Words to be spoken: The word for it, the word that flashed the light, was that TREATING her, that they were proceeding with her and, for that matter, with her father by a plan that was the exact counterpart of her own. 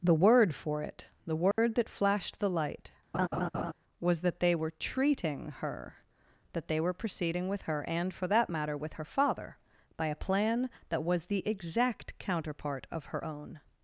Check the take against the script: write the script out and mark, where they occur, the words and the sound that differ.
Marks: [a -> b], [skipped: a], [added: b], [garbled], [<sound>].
The word for it, the word [dropout] that flashed the light, [laugh] was that [added: they were] TREATING her, that they were proceeding with her and, for that matter, with her father by a plan that was the exact counterpart of her own.